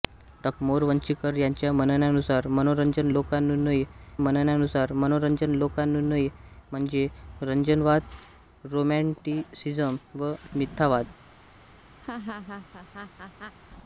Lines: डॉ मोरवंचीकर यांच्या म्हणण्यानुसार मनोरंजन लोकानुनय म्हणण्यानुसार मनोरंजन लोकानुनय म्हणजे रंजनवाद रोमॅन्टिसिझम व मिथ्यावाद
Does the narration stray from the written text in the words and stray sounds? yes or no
yes